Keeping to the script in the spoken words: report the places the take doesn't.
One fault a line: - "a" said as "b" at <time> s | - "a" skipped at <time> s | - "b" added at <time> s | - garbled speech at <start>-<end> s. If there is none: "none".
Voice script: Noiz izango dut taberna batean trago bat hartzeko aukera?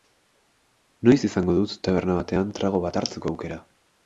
none